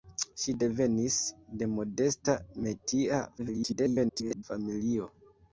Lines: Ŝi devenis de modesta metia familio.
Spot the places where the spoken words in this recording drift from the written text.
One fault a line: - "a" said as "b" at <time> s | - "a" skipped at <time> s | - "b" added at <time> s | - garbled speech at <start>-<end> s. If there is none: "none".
- garbled speech at 3.4-4.4 s